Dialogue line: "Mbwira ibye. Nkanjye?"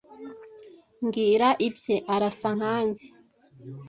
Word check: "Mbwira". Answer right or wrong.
right